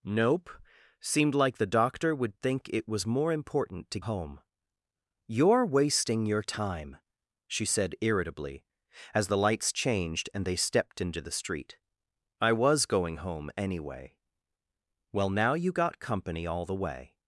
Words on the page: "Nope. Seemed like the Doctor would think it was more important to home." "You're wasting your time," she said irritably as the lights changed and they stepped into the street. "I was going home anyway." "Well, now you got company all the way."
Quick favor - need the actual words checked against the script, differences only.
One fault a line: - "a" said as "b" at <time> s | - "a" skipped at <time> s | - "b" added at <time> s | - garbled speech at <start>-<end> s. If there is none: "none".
none